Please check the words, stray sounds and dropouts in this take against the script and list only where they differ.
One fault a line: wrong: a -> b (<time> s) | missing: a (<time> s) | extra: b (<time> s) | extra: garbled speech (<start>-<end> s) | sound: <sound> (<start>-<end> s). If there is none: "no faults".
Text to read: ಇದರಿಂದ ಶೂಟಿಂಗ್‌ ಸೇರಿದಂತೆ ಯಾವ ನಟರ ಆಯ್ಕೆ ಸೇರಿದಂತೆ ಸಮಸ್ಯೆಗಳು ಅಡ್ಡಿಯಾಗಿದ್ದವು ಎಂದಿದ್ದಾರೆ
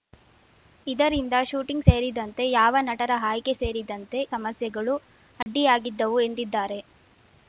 sound: dropout (5.4-5.5 s)